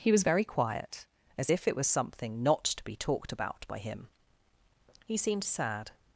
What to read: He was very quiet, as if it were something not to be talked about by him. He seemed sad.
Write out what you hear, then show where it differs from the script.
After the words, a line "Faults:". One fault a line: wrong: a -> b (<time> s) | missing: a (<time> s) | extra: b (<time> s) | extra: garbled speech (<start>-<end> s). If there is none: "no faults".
He was very quiet, as if it was something not to be talked about by him. He seemed sad.
Faults:
wrong: were -> was (1.7 s)